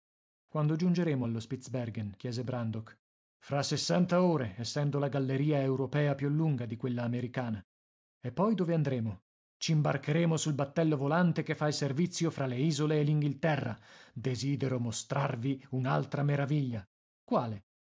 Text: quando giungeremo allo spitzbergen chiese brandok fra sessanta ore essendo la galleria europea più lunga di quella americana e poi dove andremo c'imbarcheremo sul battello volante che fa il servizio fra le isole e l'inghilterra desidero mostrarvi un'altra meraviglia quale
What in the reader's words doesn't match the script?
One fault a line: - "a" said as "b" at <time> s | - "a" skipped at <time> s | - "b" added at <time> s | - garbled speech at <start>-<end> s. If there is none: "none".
none